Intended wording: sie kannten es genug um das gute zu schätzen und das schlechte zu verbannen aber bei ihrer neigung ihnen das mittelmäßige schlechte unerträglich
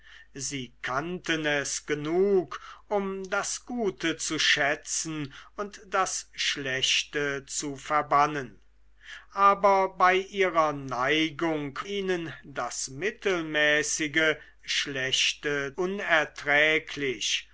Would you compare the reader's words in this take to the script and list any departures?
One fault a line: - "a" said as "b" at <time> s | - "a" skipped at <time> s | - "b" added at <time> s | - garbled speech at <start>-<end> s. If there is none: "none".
none